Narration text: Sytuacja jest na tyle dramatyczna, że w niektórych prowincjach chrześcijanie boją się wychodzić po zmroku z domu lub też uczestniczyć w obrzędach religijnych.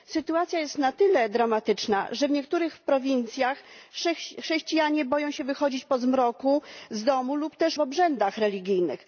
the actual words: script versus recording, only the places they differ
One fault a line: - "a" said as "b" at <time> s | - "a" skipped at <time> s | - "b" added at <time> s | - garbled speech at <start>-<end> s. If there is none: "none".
- "uczestniczyć" skipped at 7.8 s